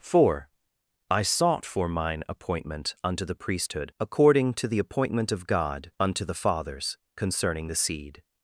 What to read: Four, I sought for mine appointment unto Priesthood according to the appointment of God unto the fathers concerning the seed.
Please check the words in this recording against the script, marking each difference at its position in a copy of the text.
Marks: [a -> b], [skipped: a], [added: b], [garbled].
Four, I sought for mine appointment unto [added: the] Priesthood according to the appointment of God unto the fathers concerning the seed.